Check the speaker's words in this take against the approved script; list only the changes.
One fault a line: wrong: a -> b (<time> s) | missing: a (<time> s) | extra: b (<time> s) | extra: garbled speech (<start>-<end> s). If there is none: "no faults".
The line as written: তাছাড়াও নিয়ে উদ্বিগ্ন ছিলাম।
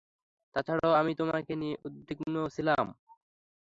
extra: আমি তোমাকে (1.0 s)